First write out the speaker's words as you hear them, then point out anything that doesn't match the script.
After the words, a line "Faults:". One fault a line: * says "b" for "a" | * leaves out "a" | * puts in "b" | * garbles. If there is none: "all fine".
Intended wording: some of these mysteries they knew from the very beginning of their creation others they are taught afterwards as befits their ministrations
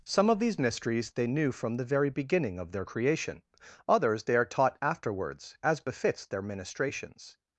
some of these mysteries they knew from the very beginning of their creation others they are taught afterwards as befits their ministrations
Faults:
all fine